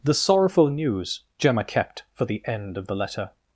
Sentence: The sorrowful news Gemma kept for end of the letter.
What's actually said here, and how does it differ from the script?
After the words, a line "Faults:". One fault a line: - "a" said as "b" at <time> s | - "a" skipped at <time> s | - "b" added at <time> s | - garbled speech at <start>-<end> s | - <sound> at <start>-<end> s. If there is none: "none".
The sorrowful news Gemma kept for the end of the letter.
Faults:
- "the" added at 2.2 s